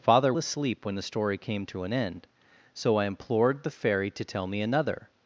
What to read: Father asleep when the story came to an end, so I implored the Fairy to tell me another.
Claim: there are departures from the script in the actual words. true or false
false